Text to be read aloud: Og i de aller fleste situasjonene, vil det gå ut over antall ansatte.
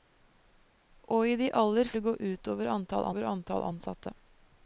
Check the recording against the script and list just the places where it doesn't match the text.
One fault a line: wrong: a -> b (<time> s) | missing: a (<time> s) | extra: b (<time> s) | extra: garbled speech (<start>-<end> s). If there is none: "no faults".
missing: fleste situasjonene vil (1.9 s)
extra: over antall (3.1 s)